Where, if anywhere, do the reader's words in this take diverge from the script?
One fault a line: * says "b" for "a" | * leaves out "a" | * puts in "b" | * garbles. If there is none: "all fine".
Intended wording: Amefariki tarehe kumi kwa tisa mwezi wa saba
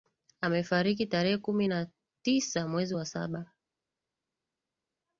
* says "na" for "kwa"